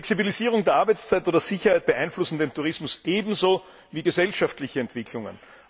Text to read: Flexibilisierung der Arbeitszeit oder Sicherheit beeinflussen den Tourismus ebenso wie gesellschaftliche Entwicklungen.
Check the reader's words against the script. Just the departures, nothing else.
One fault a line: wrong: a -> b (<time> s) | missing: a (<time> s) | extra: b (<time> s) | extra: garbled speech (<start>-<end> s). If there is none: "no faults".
no faults